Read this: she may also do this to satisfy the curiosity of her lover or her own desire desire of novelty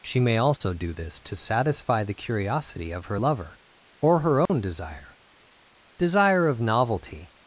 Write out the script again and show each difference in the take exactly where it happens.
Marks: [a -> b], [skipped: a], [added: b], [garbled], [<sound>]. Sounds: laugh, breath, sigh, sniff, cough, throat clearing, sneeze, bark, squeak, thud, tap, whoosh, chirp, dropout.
she may also [dropout] do this to satisfy the curiosity of her lover or her own [dropout] desire desire of novelty